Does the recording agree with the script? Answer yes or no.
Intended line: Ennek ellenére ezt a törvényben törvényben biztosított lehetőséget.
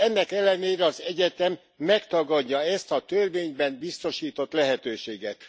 no